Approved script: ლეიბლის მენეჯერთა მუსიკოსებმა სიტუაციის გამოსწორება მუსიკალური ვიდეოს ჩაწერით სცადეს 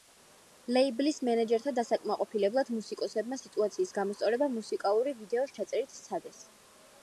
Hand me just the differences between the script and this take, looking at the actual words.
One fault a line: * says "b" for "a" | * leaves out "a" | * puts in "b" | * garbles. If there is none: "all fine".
* puts in "დასაკმაყოფილებლად"